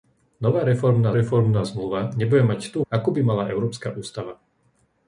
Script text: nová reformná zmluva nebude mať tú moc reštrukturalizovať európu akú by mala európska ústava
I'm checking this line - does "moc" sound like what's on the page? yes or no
no